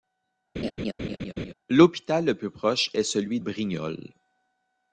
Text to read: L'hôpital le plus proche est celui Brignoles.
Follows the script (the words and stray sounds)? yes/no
no